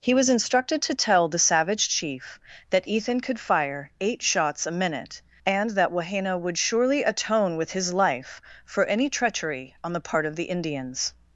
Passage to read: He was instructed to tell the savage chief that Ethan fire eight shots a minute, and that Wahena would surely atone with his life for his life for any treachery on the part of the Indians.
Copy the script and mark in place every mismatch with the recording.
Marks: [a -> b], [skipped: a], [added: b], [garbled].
He was instructed to tell the savage chief that Ethan [added: could] fire eight shots a minute, and that Wahena would surely atone with his life for [skipped: his life for] any treachery on the part of the Indians.